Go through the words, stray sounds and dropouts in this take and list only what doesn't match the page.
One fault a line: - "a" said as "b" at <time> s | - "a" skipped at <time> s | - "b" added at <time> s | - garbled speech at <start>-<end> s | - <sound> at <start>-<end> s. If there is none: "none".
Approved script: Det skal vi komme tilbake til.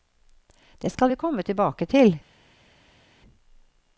none